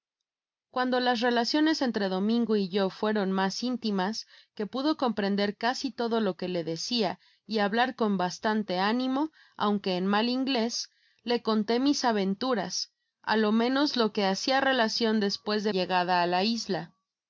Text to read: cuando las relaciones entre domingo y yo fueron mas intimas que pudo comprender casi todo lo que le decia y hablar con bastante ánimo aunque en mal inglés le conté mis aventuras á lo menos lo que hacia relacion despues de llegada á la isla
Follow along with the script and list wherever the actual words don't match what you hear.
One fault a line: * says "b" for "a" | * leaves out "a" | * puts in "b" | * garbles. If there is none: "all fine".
all fine